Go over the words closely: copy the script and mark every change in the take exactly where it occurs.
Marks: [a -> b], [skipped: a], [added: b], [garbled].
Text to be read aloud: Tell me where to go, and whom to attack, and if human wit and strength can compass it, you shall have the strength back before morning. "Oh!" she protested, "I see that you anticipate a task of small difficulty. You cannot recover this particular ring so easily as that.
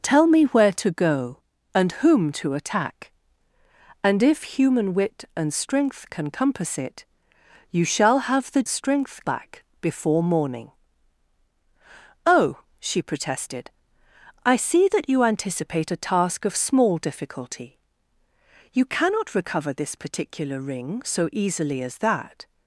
Tell me where to go, and whom to attack, and if human wit and strength can compass it, you shall have the strength back before morning. "Oh!" she protested, "I see that you anticipate a task of small difficulty. You cannot recover this particular ring so easily as that.